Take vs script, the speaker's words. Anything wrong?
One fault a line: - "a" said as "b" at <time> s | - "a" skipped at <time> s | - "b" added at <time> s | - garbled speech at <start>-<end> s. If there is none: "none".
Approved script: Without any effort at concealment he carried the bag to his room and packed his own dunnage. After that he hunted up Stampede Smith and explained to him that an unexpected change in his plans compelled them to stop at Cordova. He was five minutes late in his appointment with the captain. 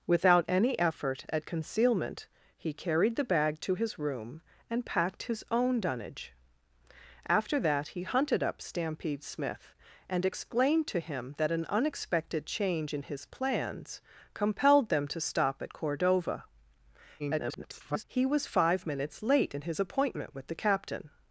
- garbled speech at 17.2-18.0 s